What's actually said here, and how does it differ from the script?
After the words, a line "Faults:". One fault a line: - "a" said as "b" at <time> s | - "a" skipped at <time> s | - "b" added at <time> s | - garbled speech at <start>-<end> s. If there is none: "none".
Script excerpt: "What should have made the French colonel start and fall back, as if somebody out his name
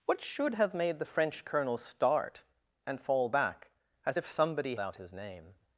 "What should have made the French colonel start and fall back, as if somebody out his name
Faults:
none